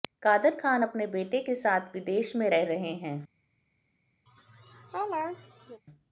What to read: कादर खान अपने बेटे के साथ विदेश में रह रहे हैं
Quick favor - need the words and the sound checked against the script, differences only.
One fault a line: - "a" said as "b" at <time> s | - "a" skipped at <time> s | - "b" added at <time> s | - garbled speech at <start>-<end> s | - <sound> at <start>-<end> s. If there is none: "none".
- laugh at 4.3-5.8 s